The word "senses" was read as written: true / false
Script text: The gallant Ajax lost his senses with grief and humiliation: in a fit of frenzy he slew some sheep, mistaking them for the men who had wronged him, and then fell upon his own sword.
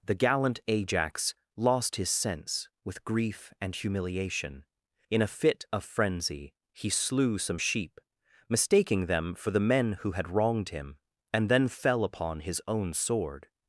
false